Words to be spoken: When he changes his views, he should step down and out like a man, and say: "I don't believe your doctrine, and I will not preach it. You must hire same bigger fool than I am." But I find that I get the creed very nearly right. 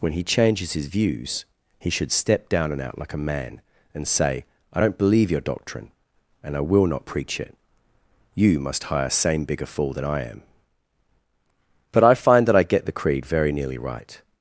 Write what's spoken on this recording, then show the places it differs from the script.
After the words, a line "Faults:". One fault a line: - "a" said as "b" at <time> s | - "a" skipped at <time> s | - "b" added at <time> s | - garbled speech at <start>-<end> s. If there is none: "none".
When he changes his views, he should step down and out like a man, and say: "I don't believe your doctrine, and I will not preach it. You must hire same bigger fool than I am." But I find that I get the creed very nearly right.
Faults:
none